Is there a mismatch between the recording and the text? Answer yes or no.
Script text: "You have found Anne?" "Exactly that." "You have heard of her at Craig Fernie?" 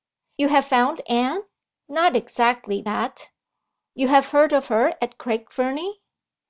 yes